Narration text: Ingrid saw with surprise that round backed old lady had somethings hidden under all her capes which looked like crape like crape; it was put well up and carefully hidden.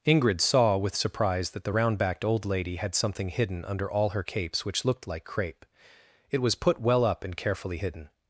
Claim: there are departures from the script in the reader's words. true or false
true